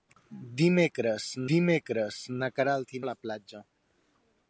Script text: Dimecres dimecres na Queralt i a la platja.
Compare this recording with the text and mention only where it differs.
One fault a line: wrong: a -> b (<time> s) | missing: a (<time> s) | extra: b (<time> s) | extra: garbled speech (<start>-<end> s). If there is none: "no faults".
no faults